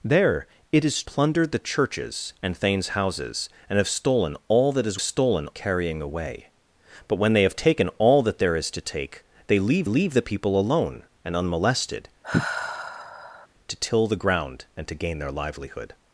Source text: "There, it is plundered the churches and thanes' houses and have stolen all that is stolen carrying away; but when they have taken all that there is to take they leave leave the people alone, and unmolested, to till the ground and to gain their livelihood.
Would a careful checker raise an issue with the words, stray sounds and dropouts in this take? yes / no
yes